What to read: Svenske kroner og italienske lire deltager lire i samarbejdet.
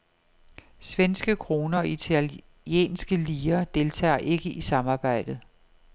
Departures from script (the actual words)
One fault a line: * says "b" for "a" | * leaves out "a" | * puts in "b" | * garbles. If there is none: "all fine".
* says "ikke" for "lire"